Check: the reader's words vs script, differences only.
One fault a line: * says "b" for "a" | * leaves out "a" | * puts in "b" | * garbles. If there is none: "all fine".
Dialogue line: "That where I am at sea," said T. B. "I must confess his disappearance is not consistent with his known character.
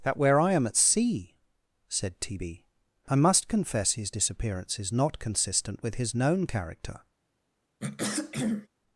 all fine